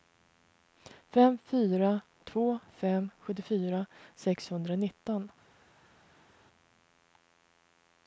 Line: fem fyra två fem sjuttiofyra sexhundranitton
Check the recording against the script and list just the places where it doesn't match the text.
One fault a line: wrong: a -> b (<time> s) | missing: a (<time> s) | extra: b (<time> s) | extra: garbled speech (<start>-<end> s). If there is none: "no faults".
no faults